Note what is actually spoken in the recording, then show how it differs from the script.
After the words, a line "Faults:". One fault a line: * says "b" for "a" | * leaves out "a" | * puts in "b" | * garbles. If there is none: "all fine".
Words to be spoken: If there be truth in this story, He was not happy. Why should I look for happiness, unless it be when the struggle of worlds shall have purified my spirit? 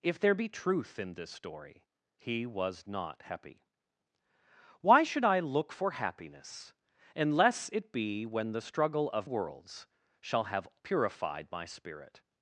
If there be truth in this story, He was not happy. Why should I look for happiness, unless it be when the struggle of worlds shall have purified my spirit?
Faults:
all fine